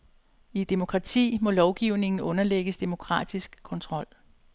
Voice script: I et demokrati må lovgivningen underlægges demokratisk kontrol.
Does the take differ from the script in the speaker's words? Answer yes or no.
no